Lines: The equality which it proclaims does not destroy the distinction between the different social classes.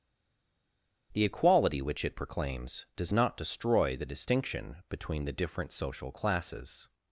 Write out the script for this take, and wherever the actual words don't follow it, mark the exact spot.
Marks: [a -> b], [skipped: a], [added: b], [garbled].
The equality which it proclaims does not destroy the distinction between the different social classes.